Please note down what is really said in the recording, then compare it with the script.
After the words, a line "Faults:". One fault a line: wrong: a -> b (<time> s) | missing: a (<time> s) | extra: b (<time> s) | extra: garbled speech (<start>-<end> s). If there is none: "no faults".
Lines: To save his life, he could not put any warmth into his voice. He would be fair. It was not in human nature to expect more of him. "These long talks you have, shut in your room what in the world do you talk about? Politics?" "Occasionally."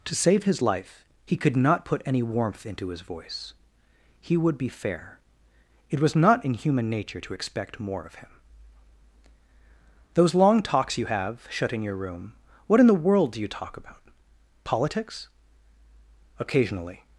To save his life, he could not put any warmth into his voice. He would be fair. It was not in human nature to expect more of him. "Those long talks you have, shut in your room what in the world do you talk about? Politics?" "Occasionally."
Faults:
wrong: These -> Those (10.1 s)